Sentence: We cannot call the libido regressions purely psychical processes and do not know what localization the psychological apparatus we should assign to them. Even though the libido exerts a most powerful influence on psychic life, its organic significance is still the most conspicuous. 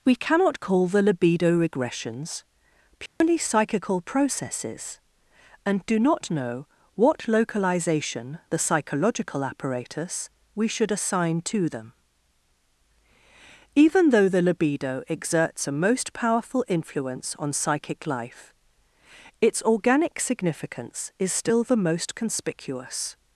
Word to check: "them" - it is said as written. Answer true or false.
true